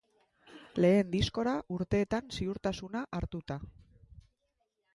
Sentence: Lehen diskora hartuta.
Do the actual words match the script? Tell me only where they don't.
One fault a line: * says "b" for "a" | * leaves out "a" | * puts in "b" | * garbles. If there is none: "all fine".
* puts in "urteetan ziurtasuna"